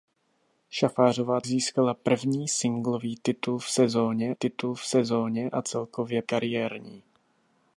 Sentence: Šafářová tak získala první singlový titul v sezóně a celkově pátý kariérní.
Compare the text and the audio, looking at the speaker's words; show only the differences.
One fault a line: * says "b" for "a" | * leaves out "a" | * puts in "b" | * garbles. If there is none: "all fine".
* leaves out "tak"
* puts in "titul v sezóně"
* leaves out "pátý"